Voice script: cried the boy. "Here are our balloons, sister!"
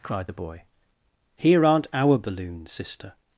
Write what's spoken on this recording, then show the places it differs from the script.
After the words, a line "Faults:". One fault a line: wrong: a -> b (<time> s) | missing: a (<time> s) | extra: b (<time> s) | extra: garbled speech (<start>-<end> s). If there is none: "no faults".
cried the boy. "Here aren't our balloons, sister!"
Faults:
wrong: are -> aren't (1.6 s)